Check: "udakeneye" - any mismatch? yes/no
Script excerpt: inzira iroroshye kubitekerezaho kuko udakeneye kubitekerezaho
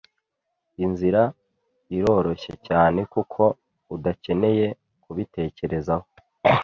no